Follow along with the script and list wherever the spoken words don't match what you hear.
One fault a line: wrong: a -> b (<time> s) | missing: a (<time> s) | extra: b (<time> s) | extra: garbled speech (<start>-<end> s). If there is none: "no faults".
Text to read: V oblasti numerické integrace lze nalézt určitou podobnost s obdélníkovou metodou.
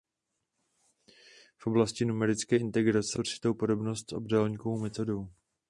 missing: lze nalézt (3.2 s)